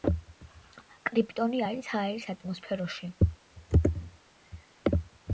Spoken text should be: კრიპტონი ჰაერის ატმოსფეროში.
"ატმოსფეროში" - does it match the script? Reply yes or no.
yes